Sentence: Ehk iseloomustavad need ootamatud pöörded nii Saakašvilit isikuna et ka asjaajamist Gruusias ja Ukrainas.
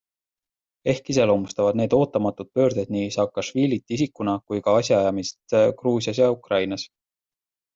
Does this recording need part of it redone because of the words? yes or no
yes